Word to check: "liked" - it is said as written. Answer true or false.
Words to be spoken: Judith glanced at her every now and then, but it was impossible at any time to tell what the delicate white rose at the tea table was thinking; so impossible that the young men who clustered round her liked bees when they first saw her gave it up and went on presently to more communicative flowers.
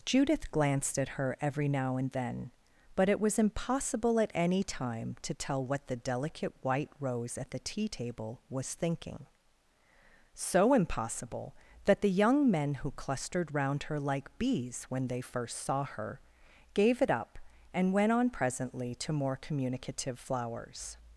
false